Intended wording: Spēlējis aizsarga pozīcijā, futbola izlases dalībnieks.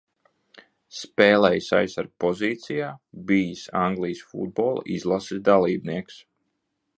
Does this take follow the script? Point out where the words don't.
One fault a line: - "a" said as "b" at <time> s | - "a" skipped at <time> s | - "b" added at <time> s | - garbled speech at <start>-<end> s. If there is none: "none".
- "bijis Anglijas" added at 3.3 s